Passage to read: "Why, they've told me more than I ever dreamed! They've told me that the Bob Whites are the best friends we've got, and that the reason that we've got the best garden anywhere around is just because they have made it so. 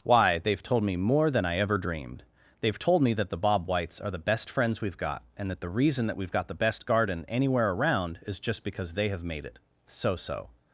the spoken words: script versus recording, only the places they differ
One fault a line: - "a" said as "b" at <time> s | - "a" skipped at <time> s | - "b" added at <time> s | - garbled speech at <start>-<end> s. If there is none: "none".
- "so" added at 10.2 s